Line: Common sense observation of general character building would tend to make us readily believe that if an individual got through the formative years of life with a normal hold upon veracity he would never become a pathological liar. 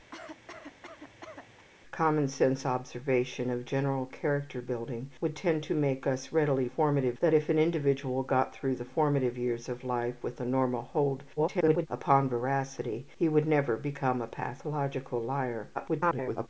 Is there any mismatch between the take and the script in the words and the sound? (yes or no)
yes